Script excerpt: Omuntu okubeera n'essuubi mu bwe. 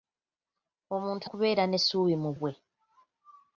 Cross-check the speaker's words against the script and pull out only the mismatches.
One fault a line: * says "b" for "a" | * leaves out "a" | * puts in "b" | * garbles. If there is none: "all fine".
all fine